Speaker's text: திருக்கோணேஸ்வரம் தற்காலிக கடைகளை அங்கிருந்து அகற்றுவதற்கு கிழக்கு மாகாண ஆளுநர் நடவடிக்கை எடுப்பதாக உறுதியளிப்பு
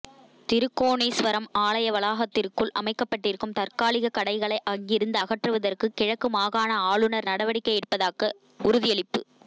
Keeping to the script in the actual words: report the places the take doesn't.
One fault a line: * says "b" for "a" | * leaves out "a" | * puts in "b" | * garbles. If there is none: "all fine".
* puts in "ஆலய வளாகத்திற்குள் அமைக்கப்பட்டிருக்கும்"